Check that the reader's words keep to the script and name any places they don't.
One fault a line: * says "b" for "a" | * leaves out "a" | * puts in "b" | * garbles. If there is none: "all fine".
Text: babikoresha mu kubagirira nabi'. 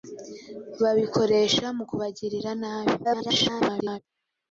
* garbles